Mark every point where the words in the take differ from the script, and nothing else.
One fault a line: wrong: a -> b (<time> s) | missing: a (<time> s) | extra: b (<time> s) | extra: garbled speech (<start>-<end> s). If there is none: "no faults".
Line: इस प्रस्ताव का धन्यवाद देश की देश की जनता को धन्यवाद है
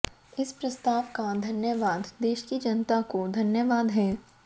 missing: देश की (2.6 s)